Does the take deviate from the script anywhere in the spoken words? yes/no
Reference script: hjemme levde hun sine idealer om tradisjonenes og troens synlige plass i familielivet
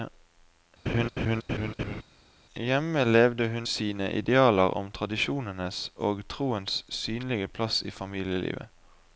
no